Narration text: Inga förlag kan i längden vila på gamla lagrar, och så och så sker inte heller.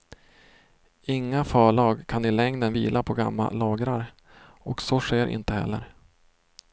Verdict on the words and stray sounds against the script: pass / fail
fail